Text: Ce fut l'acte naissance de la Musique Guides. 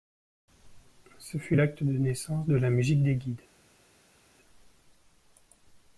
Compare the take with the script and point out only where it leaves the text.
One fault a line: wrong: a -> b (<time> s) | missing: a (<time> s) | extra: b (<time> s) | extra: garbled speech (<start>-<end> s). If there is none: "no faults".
extra: de (1.8 s)
extra: des (3.0 s)